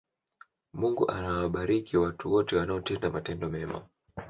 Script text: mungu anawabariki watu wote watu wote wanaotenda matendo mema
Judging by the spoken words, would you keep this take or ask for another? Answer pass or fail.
fail